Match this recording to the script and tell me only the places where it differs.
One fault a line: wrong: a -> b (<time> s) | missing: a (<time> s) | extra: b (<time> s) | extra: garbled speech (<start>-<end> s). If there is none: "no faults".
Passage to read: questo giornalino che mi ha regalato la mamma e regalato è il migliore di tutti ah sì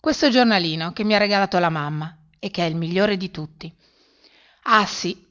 wrong: regalato -> che (2.5 s)